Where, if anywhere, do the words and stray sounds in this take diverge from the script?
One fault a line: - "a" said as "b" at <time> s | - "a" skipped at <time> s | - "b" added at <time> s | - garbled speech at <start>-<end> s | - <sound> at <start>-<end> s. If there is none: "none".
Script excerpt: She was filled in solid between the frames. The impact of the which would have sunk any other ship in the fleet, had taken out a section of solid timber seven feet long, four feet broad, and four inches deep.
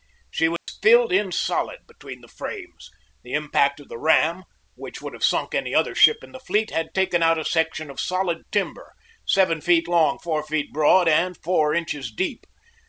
- dropout at 0.6-0.7 s
- "ram" added at 4.0 s